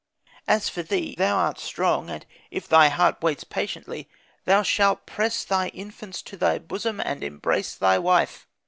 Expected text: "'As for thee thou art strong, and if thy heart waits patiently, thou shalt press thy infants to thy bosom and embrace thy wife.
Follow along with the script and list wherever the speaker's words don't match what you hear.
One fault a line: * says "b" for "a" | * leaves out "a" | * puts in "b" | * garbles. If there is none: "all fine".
all fine